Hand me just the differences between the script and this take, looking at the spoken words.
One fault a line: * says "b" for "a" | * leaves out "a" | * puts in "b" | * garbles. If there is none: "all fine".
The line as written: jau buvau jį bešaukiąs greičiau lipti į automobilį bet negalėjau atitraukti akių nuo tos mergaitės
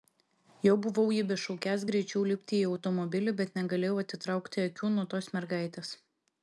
all fine